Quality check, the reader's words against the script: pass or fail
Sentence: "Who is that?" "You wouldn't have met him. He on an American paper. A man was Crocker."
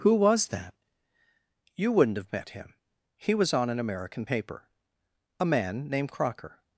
fail